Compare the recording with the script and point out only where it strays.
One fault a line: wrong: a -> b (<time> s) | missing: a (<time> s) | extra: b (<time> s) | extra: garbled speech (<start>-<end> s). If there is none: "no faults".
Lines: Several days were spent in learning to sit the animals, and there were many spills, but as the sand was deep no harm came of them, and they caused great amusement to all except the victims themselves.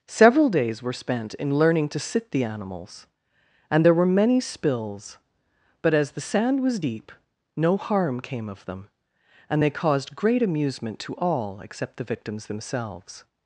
no faults